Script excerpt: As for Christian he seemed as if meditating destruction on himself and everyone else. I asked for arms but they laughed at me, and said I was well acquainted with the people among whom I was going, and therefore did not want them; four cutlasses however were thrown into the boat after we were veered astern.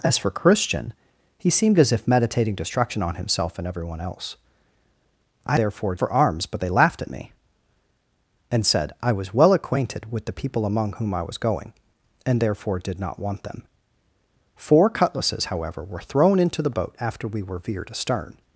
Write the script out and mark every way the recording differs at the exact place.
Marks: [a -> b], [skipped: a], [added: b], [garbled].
As for Christian he seemed as if meditating destruction on himself and everyone else. I [asked -> therefore] for arms but they laughed at me, and said I was well acquainted with the people among whom I was going, and therefore did not want them; four cutlasses however were thrown into the boat after we were veered astern.